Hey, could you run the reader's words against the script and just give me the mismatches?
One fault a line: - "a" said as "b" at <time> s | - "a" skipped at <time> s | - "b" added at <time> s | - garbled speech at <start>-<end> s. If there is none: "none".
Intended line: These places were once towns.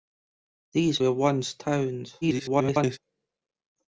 - "places" skipped at 1.0 s
- garbled speech at 2.2-3.0 s